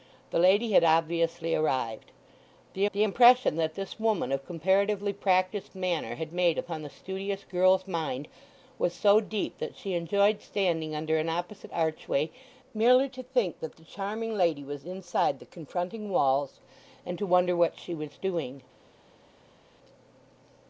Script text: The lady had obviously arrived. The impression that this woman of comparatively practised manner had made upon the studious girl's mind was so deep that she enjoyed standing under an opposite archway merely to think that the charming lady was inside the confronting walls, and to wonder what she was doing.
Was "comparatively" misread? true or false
false